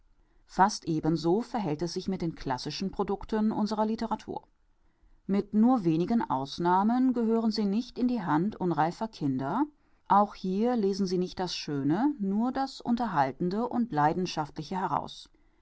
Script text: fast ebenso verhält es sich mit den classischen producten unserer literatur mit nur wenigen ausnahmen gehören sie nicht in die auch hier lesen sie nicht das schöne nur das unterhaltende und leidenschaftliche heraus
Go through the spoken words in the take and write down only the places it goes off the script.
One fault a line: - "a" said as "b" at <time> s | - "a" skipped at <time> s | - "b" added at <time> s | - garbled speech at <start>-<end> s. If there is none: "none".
- "hand unreifer kinder" added at 8.2 s